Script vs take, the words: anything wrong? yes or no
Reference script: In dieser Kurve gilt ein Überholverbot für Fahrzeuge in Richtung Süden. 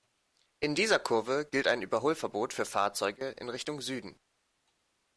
no